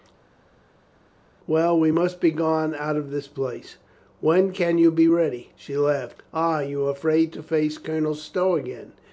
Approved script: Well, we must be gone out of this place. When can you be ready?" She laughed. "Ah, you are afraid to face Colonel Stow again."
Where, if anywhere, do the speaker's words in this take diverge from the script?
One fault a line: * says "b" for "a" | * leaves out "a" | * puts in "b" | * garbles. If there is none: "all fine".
all fine